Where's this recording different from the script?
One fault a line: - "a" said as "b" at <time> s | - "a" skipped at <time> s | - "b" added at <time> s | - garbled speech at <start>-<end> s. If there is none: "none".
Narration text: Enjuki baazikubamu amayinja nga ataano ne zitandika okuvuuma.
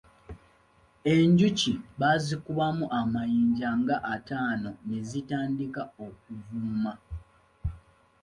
none